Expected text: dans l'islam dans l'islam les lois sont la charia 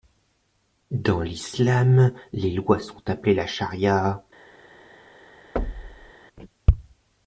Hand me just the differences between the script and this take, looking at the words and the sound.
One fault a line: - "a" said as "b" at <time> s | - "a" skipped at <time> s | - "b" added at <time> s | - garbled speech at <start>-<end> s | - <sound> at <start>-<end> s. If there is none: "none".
- "dans l'islam" skipped at 2.1 s
- "appelées" added at 3.1 s
- thud at 5.6-6.1 s